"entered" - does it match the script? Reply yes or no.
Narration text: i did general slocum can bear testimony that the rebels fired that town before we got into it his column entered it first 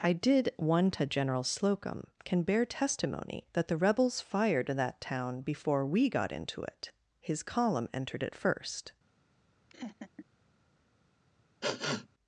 yes